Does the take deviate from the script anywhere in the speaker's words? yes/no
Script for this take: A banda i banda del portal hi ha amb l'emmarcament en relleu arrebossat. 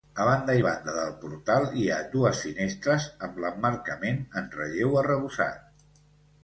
yes